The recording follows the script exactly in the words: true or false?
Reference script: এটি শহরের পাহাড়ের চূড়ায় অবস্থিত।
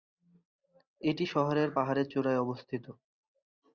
true